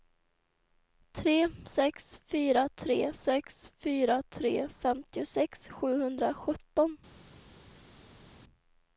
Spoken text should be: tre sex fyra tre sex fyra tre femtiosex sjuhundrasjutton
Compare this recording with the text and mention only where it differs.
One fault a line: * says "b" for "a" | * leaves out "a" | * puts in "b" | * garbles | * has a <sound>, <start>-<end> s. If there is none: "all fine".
all fine